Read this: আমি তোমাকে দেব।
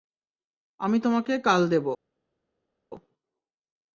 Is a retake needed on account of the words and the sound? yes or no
yes